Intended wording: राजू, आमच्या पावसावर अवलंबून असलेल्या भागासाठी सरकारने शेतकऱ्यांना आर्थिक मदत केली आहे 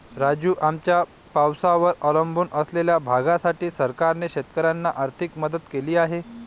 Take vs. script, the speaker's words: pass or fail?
pass